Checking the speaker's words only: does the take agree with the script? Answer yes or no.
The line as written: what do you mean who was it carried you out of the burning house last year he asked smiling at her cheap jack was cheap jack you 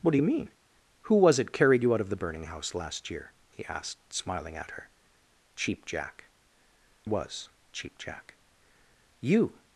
yes